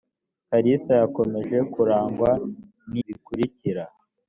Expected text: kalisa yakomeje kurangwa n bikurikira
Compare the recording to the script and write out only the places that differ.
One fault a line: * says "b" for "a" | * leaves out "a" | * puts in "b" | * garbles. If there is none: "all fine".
all fine